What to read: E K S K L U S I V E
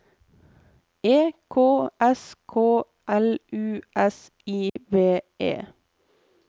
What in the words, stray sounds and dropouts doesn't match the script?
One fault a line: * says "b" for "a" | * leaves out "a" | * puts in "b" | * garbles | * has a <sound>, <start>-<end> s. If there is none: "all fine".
* has a dropout, 4.7-4.8 s